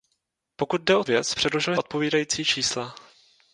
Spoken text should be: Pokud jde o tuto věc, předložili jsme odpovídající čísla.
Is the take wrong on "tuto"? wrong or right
wrong